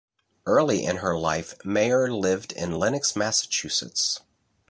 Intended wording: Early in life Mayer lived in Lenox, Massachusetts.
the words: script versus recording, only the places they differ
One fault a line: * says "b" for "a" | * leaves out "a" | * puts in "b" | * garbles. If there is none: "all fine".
* puts in "her"